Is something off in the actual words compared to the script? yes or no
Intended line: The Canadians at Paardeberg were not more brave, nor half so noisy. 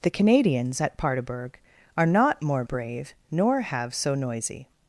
yes